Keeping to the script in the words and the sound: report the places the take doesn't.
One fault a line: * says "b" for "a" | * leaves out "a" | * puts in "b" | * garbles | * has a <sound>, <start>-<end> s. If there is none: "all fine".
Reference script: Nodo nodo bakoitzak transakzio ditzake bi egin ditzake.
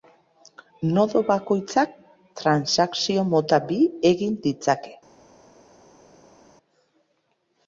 * leaves out "nodo"
* says "mota" for "ditzake"